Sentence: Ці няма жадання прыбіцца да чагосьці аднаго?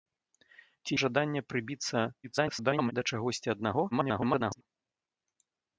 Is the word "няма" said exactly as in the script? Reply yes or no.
no